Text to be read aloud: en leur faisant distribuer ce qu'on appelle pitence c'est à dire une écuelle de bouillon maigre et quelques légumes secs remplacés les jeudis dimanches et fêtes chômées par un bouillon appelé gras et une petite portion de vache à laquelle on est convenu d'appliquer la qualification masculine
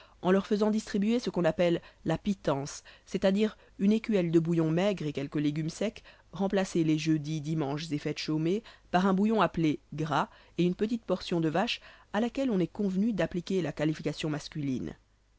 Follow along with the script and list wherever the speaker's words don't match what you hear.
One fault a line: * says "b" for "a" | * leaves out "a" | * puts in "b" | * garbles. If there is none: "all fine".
* puts in "la"